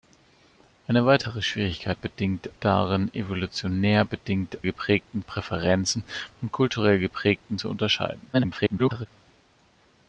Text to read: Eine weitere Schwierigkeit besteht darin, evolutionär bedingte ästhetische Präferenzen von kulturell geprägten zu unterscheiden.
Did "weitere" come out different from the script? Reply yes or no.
no